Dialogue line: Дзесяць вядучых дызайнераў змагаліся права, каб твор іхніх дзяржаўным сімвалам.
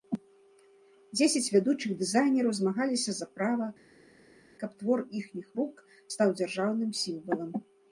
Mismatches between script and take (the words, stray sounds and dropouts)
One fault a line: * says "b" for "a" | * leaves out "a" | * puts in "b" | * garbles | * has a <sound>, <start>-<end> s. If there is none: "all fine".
* puts in "за"
* puts in "рук стаў"